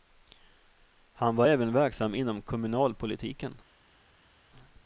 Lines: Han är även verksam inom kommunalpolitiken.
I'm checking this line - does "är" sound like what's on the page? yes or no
no